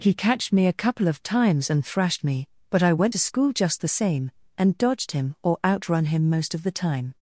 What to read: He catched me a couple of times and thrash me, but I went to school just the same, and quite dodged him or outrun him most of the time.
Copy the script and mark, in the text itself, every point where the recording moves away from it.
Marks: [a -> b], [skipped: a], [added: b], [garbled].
He catched me a couple of times and [thrash -> thrashed] me, but I went to school just the same, and [skipped: quite] dodged him or outrun him most of the time.